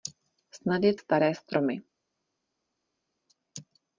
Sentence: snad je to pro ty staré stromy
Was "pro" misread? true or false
true